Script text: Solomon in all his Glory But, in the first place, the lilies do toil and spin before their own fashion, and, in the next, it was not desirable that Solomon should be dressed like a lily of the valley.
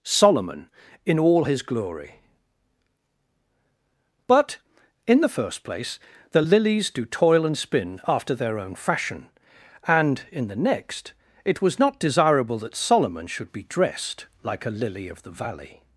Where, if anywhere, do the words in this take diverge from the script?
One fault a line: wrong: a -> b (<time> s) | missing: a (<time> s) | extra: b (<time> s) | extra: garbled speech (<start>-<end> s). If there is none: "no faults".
wrong: before -> after (8.1 s)